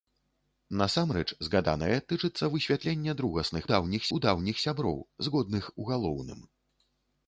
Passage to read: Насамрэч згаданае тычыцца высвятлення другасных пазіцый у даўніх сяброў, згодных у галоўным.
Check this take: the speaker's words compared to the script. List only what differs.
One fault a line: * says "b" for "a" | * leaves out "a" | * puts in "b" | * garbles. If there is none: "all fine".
* says "даўніх" for "пазіцый"